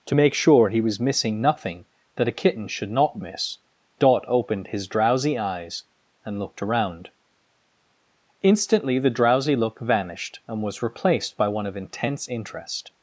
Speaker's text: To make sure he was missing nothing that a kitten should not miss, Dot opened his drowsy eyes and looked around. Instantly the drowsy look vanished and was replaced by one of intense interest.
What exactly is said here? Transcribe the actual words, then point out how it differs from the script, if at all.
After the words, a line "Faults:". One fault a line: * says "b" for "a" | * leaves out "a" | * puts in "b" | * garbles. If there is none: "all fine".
To make sure he was missing nothing that a kitten should not miss, Dot opened his drowsy eyes and looked around. Instantly the drowsy look vanished and was replaced by one of intense interest.
Faults:
all fine